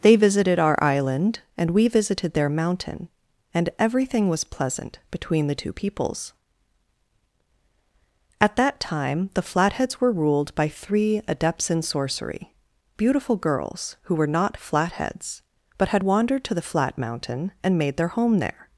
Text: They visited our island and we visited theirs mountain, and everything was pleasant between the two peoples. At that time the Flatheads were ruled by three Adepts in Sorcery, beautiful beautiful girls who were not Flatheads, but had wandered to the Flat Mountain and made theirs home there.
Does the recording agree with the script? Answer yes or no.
no